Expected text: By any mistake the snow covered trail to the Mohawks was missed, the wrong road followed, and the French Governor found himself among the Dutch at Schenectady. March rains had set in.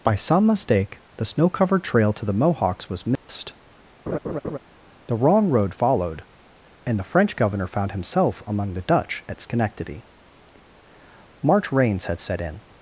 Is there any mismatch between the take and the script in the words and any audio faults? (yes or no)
yes